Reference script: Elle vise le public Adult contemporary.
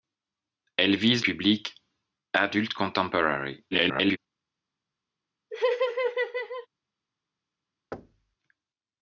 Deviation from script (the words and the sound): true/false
true